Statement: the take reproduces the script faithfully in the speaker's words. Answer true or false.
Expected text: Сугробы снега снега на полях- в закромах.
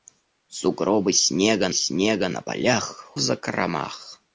true